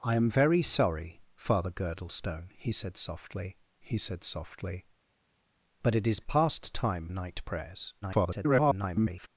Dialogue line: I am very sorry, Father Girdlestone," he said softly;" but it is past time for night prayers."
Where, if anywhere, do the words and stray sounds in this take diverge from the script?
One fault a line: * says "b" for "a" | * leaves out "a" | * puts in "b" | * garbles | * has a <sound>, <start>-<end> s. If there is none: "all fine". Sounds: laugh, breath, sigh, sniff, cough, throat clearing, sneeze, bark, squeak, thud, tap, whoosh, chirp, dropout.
* puts in "he said softly"
* leaves out "for"
* garbles